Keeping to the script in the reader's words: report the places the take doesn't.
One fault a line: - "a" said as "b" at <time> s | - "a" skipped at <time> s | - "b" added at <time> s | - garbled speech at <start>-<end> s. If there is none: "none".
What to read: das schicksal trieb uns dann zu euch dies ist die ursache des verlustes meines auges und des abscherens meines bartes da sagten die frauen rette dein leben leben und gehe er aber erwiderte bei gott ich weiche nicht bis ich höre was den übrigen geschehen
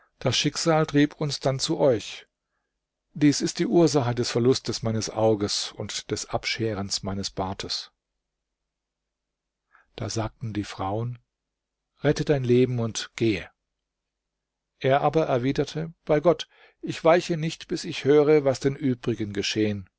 - "leben" skipped at 12.8 s